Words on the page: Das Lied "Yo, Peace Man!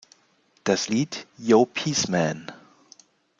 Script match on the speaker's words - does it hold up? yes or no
yes